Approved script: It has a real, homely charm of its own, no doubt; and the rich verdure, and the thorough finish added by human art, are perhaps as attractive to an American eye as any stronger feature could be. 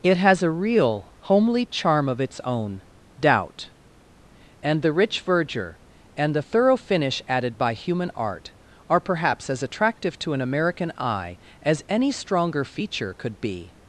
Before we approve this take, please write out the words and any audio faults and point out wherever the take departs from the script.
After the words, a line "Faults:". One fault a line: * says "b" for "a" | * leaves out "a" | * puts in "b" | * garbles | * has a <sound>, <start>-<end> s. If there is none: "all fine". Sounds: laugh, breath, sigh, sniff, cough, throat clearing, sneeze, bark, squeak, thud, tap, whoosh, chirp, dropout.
It has a real, homely charm of its own, doubt; and the rich verdure, and the thorough finish added by human art, are perhaps as attractive to an American eye as any stronger feature could be.
Faults:
* leaves out "no"